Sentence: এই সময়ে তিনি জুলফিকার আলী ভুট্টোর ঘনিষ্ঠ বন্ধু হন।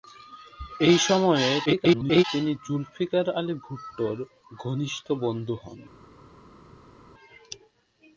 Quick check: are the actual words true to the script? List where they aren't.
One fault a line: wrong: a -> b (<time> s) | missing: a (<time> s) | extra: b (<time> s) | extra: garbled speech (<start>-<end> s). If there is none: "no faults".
extra: garbled speech (1.7-2.2 s)